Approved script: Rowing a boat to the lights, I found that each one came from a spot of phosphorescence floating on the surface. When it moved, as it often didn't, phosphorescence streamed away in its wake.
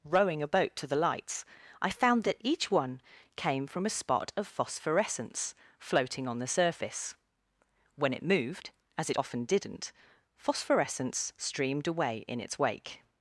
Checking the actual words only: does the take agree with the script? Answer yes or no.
yes